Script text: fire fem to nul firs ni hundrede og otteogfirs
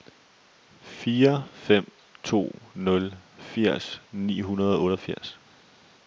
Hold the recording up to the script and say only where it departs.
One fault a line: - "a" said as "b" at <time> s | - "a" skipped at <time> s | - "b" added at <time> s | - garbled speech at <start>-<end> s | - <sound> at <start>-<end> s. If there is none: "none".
none